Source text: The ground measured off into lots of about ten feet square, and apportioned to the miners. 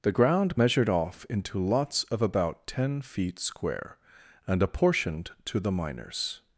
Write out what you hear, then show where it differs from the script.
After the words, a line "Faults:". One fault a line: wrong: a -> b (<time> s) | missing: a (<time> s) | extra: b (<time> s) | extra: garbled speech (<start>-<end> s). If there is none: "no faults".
The ground measured off into lots of about ten feet square, and apportioned to the miners.
Faults:
no faults